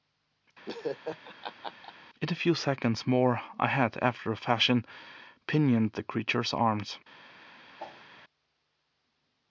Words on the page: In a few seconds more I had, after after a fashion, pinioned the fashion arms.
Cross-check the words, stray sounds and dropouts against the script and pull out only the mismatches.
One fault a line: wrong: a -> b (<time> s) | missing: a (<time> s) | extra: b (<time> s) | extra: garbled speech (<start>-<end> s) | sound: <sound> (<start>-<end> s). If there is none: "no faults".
sound: laugh (0.7-1.9 s)
missing: after (4.3 s)
wrong: fashion -> creature's (6.0 s)
sound: whoosh (7.8-8.1 s)